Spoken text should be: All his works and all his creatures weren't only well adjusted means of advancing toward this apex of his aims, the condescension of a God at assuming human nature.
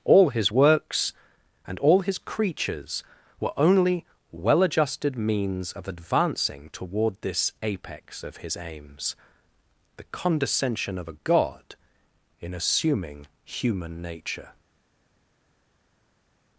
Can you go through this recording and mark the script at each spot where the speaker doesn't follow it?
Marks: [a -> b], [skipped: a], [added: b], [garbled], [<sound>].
All his works and all his creatures [weren't -> were] only well adjusted means of advancing toward this apex of his aims, the condescension of a God [at -> in] assuming human nature.